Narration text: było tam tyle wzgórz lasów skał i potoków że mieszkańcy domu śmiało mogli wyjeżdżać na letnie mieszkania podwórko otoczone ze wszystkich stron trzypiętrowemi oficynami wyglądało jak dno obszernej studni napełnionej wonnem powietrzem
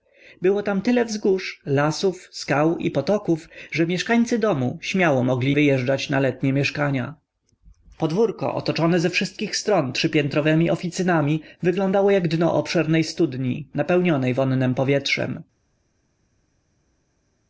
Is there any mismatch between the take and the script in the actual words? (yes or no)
no